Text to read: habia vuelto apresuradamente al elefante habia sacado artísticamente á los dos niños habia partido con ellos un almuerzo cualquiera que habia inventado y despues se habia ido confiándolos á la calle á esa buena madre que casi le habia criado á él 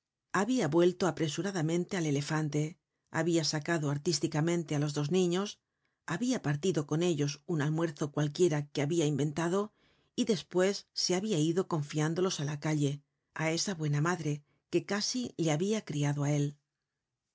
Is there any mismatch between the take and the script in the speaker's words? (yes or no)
no